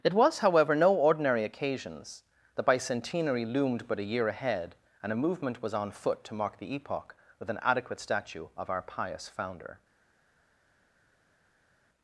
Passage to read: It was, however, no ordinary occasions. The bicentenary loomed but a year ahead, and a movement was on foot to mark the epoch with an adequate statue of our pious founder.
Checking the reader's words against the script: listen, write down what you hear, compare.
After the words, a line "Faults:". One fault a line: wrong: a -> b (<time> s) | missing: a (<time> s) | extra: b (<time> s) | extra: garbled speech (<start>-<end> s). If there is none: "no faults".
It was, however, no ordinary occasions. The bicentenary loomed but a year ahead, and a movement was on foot to mark the epoch with an adequate statue of our pious founder.
Faults:
no faults